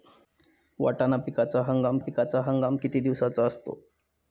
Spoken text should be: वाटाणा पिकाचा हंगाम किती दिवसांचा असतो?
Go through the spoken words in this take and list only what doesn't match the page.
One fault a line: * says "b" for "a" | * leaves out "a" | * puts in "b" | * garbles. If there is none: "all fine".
* puts in "पिकाचा हंगाम"